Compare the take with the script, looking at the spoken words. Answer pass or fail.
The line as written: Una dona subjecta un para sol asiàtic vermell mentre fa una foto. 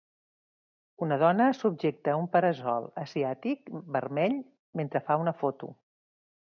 pass